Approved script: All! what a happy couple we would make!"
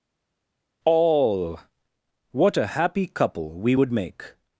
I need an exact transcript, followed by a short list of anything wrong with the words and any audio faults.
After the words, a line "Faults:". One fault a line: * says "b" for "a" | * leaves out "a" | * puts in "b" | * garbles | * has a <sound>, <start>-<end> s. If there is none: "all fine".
All! what a happy couple we would make!"
Faults:
all fine